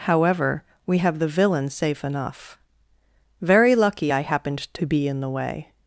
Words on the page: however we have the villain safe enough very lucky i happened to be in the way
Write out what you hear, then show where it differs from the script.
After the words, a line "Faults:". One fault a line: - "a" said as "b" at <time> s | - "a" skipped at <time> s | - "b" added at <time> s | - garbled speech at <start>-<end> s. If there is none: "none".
however we have the villain safe enough very lucky i happened to be in the way
Faults:
none